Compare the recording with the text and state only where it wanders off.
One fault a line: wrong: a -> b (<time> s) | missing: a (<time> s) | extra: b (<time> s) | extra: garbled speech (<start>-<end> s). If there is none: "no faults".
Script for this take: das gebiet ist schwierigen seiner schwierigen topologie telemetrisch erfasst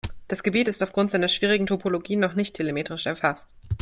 wrong: schwierigen -> aufgrund (0.8 s)
extra: noch nicht (2.2 s)